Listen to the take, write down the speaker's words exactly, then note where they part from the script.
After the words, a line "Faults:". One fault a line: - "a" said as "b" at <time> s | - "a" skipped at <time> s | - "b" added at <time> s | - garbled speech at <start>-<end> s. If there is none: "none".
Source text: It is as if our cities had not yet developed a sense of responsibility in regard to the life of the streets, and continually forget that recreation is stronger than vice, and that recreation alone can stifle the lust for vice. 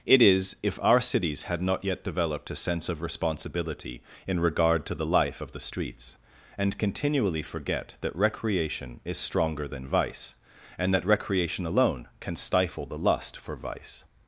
It is if our cities had not yet developed a sense of responsibility in regard to the life of the streets, and continually forget that recreation is stronger than vice, and that recreation alone can stifle the lust for vice.
Faults:
- "as" skipped at 0.6 s